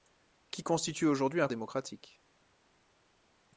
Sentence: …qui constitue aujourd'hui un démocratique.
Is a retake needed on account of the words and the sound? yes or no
no